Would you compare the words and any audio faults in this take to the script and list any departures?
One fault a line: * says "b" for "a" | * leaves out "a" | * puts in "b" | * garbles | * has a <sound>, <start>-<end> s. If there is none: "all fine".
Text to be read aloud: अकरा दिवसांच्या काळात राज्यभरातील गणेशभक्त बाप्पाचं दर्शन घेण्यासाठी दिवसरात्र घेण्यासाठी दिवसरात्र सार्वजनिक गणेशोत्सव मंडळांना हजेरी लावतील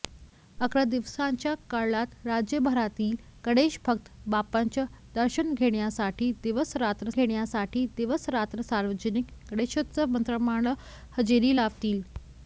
all fine